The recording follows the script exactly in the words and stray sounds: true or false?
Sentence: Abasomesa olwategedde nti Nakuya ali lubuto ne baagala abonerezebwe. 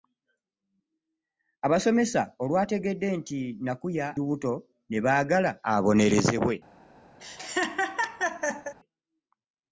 false